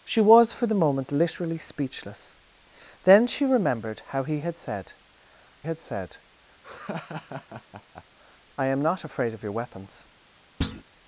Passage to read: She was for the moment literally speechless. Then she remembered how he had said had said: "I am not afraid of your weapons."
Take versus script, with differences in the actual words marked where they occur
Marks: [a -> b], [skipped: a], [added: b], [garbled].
She was for the moment literally speechless. Then she remembered how he had said had said: "I am not afraid of your weapons."